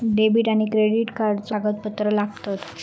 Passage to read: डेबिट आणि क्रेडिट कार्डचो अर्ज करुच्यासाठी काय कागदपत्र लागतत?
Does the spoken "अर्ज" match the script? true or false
false